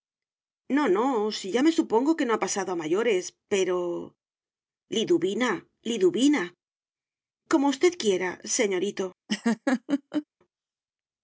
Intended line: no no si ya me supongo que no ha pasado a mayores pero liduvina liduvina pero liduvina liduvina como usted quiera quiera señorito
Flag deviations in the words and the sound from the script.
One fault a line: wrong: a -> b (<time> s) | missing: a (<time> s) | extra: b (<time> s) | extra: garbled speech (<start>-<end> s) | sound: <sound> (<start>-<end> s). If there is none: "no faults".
missing: pero liduvina liduvina (6.4 s)
missing: quiera (8.3 s)
sound: laugh (9.3-10.3 s)